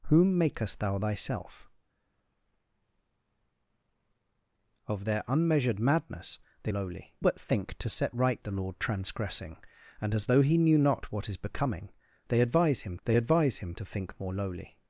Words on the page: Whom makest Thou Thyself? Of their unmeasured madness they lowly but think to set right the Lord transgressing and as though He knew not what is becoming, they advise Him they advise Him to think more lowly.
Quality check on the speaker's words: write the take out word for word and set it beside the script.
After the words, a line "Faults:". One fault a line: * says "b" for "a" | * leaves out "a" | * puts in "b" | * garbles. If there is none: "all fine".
Whom makest Thou Thyself? Of their unmeasured madness they lowly but think to set right the Lord transgressing and as though He knew not what is becoming, they advise Him they advise Him to think more lowly.
Faults:
all fine